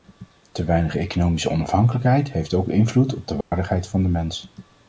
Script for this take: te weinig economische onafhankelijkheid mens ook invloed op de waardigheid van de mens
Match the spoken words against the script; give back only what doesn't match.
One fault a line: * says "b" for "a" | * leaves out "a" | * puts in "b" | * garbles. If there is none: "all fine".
* says "heeft" for "mens"